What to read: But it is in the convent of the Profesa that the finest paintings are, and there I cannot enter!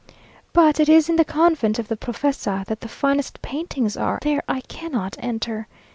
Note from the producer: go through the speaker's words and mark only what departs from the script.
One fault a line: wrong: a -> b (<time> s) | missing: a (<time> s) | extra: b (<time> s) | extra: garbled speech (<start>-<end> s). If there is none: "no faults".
missing: and (4.2 s)